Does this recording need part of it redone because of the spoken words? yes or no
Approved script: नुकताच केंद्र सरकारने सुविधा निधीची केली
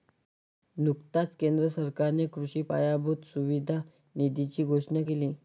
yes